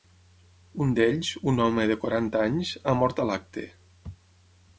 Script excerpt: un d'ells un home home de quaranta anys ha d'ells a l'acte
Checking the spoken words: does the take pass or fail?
fail